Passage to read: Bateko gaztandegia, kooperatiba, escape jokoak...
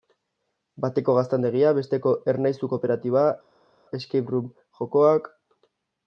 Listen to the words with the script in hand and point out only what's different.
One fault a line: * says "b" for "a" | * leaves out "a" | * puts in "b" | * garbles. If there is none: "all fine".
* puts in "besteko Ernaizu"
* puts in "room"